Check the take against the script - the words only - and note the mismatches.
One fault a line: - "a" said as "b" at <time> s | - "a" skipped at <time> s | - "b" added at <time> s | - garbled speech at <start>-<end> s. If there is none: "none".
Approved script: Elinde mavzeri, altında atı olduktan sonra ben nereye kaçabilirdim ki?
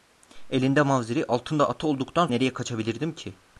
- "sonra ben" skipped at 2.3 s